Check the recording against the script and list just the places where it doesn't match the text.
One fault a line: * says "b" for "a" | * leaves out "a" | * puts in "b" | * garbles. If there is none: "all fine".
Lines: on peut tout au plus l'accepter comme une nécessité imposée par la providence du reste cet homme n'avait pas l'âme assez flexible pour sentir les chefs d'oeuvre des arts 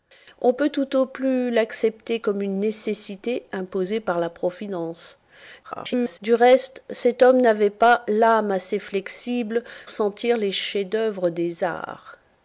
* garbles
* leaves out "pour"